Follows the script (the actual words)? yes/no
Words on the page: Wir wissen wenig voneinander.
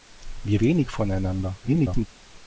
no